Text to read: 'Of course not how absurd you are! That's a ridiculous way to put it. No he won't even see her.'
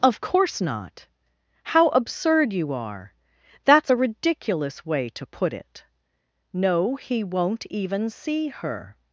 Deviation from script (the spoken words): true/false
false